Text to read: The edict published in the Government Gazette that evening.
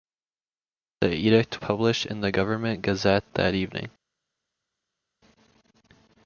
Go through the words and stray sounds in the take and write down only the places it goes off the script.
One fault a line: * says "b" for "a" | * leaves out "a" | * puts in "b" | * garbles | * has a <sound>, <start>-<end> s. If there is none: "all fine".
all fine